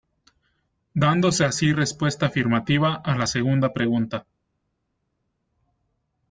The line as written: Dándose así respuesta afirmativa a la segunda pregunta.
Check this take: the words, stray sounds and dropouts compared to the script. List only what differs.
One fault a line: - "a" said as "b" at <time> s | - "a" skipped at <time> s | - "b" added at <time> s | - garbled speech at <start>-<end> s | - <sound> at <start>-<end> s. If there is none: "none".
none